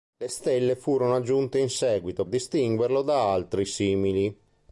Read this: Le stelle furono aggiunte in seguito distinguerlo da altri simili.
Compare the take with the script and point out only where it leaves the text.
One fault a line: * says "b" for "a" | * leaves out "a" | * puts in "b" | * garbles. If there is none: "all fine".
all fine